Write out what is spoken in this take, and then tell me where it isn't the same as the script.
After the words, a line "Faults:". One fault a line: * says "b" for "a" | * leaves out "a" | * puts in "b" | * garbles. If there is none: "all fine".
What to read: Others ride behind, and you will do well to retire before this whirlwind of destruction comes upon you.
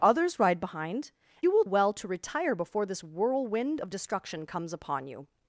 Others ride behind, you will well to retire before this whirlwind of destruction comes upon you.
Faults:
* leaves out "and"
* leaves out "do"